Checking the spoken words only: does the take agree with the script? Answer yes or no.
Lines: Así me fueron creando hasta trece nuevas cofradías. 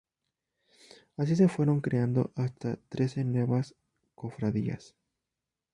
no